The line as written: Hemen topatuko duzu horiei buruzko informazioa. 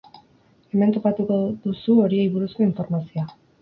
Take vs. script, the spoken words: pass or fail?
pass